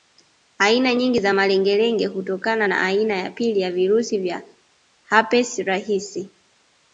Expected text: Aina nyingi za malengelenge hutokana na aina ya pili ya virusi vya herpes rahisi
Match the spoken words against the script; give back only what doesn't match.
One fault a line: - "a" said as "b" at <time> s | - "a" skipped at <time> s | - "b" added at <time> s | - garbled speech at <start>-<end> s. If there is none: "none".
none